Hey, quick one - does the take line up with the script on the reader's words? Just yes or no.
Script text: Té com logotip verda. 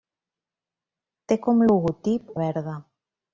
yes